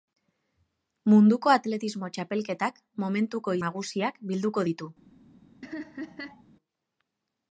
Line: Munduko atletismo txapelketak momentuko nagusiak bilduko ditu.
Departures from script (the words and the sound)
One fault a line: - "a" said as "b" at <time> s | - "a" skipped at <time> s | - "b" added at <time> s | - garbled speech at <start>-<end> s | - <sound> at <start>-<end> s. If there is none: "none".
- laugh at 5.6-6.4 s